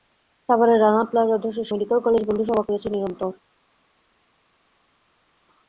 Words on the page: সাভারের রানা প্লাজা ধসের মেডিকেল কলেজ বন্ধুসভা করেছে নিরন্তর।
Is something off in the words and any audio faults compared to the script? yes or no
no